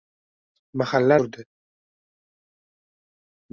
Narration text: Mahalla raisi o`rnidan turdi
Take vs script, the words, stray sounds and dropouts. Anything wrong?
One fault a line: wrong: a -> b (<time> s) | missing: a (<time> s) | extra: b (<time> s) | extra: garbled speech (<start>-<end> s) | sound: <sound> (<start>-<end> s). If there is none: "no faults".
missing: raisi o`rnidan (1.2 s)